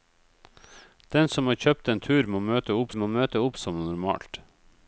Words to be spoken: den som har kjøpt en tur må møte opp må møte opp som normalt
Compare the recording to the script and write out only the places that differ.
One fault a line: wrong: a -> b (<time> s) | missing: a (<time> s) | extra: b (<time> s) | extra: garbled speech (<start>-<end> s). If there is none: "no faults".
no faults